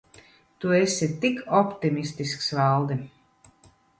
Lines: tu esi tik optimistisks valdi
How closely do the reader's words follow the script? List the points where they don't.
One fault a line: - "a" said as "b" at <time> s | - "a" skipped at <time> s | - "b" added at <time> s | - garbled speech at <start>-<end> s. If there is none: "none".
none